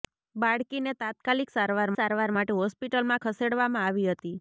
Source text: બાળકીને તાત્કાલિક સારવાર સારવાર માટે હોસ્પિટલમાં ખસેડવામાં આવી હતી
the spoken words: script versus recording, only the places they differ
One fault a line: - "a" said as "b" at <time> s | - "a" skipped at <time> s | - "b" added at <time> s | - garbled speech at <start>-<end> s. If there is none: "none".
none